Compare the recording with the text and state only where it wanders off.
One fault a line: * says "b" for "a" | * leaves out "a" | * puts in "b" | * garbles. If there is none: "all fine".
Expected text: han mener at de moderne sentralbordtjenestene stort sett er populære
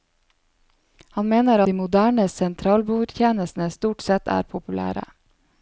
* leaves out "at"